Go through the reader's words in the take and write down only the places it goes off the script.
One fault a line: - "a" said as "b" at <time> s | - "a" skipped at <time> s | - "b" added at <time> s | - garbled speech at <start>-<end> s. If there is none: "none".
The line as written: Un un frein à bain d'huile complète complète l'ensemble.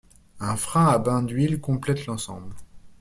- "un" skipped at 0.6 s
- "complète" skipped at 2.1 s